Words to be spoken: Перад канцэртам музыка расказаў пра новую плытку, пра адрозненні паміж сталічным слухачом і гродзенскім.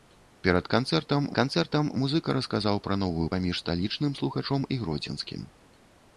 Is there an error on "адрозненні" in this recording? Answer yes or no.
yes